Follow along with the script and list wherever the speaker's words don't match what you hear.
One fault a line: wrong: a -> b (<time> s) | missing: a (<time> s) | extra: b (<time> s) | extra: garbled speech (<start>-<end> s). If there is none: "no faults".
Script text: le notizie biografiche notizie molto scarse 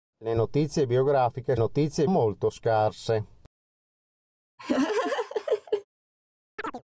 no faults